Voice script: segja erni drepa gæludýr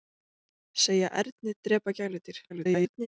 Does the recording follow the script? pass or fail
fail